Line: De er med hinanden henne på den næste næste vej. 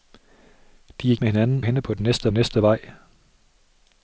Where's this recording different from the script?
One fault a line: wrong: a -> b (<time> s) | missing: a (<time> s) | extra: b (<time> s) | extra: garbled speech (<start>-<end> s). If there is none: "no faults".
no faults